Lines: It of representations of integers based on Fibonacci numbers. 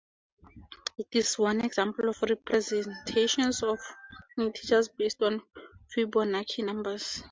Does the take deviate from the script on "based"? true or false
false